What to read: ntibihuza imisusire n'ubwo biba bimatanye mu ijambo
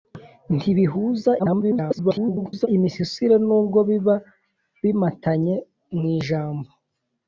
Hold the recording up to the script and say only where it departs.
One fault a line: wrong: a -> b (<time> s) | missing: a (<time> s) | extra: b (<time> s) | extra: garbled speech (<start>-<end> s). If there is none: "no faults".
extra: garbled speech (1.4-2.7 s)